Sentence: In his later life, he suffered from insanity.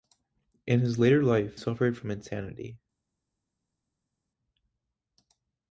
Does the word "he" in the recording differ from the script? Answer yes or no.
yes